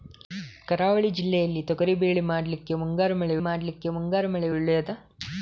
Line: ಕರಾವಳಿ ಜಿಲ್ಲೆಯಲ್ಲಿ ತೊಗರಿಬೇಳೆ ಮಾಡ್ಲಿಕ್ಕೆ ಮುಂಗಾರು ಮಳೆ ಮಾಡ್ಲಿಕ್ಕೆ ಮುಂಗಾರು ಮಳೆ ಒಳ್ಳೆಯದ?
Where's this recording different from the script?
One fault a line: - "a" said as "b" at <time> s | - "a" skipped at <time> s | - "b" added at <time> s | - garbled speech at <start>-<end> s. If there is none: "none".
none